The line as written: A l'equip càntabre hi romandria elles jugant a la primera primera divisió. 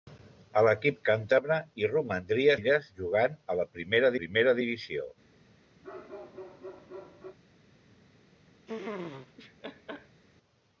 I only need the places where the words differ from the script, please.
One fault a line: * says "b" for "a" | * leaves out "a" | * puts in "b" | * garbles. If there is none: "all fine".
all fine